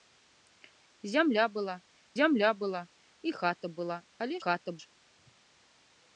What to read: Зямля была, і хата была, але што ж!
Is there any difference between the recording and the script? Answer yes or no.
yes